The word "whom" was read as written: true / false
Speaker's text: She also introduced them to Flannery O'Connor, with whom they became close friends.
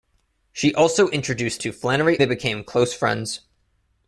false